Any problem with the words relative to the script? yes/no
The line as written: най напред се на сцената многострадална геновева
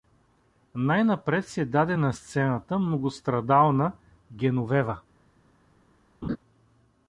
yes